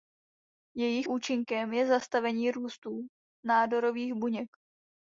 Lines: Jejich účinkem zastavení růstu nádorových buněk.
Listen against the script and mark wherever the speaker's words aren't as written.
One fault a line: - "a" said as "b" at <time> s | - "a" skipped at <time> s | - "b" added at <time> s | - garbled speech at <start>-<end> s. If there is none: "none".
- "je" added at 1.7 s